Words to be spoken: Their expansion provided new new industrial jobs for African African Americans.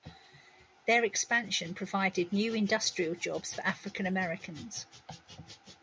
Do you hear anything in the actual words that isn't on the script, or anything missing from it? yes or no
yes